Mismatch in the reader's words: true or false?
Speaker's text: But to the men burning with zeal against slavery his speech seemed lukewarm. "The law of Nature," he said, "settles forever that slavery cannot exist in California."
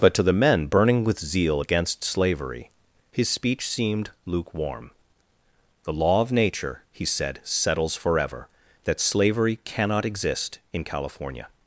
false